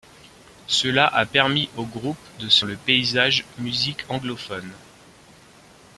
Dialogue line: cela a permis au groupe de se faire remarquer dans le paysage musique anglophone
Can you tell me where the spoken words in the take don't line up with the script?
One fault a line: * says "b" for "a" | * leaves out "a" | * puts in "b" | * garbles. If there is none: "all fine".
* leaves out "faire remarquer dans"